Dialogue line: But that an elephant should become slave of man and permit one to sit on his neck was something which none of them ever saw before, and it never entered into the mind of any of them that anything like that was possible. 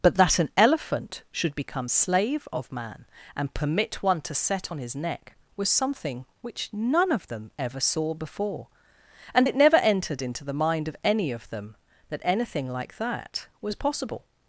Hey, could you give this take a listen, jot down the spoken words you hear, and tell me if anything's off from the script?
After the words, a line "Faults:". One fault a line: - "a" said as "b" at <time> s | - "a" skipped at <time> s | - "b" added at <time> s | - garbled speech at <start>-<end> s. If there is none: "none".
But that an elephant should become slave of man and permit one to set on his neck was something which none of them ever saw before, and it never entered into the mind of any of them that anything like that was possible.
Faults:
- "sit" said as "set" at 4.3 s